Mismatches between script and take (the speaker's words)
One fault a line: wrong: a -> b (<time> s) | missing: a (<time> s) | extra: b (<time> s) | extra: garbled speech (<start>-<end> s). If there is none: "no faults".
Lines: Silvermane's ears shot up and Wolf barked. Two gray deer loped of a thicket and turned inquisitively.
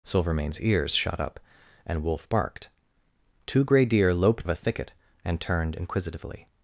no faults